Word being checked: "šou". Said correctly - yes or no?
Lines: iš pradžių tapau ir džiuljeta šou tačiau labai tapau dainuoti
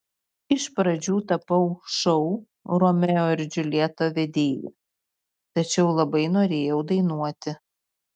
no